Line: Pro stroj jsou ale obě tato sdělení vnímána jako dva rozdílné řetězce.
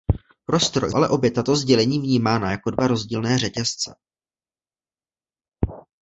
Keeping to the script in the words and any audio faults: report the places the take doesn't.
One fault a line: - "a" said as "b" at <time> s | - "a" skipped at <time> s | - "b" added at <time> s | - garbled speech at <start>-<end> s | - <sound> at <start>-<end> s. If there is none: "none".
- "jsou" skipped at 0.9 s